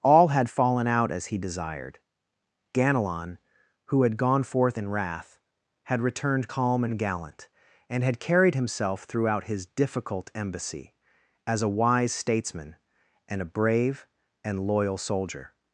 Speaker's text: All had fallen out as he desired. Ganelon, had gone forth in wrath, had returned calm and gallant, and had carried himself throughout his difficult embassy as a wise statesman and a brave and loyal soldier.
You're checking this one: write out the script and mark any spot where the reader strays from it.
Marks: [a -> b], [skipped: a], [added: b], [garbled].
All had fallen out as he desired. Ganelon, [added: who] had gone forth in wrath, had returned calm and gallant, and had carried himself throughout his difficult embassy as a wise statesman and a brave and loyal soldier.